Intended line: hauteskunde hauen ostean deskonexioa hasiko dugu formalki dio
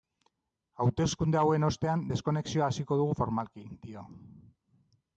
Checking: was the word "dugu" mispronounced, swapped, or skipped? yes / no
no